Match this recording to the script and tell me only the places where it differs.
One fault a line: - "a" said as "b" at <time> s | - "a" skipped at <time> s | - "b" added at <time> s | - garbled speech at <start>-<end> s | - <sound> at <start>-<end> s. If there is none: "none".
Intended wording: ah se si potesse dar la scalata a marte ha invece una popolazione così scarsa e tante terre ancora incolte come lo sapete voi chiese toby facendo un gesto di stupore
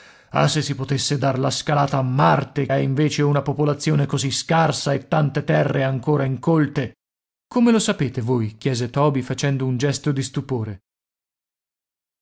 none